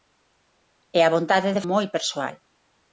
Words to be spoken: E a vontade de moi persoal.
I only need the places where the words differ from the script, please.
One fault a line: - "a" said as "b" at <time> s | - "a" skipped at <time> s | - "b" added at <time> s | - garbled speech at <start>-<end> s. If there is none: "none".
none